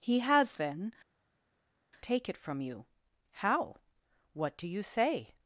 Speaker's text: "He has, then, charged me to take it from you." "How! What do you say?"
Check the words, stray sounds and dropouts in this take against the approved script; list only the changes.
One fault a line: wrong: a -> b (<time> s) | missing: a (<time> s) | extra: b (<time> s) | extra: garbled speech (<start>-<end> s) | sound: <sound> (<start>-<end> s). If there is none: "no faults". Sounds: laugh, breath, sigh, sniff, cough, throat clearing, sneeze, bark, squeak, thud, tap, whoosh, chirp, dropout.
missing: charged me to (0.9 s)